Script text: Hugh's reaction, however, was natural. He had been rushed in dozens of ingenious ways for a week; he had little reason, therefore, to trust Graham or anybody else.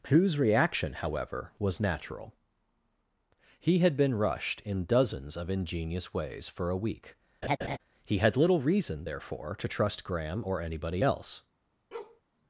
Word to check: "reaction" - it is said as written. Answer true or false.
true